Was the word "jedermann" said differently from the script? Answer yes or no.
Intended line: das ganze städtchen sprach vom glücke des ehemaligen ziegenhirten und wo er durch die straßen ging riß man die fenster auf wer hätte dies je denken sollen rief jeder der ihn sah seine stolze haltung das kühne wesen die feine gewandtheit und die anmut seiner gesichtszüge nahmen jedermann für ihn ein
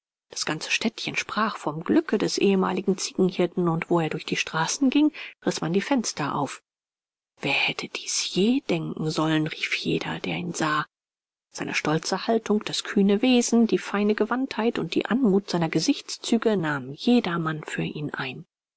no